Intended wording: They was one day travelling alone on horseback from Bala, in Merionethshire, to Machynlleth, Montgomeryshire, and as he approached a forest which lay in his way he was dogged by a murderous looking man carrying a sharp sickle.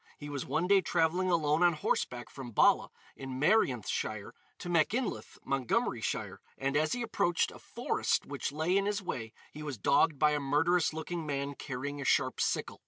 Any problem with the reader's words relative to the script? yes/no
yes